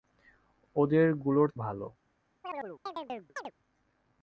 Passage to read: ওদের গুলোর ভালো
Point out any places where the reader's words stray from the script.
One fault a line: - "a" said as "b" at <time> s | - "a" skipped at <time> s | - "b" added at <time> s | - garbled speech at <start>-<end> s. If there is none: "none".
none